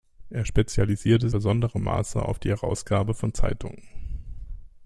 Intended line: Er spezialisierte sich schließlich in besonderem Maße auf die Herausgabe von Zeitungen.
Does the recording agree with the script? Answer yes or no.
no